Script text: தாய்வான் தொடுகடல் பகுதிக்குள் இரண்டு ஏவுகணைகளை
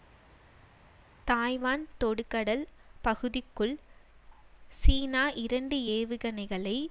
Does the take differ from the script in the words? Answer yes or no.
yes